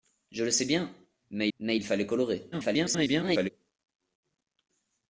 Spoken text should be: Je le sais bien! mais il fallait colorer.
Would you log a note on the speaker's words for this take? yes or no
yes